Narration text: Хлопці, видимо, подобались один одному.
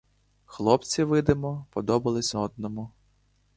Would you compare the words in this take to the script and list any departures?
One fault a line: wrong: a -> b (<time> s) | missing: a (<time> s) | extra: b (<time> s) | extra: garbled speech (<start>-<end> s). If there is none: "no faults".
missing: один (2.4 s)